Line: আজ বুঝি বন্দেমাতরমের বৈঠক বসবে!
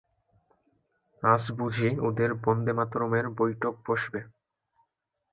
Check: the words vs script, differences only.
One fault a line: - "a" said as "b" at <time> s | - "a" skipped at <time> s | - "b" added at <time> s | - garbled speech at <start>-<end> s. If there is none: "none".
- "ওদের" added at 2.1 s